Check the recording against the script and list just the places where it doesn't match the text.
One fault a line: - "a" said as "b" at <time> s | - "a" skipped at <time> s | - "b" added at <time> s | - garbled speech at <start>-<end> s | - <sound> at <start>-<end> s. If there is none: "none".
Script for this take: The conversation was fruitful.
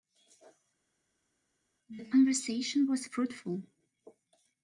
none